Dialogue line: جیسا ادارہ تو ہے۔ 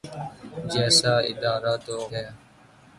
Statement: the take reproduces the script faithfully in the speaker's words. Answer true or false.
true